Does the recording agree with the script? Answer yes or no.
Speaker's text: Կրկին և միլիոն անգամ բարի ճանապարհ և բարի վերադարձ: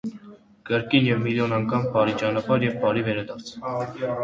yes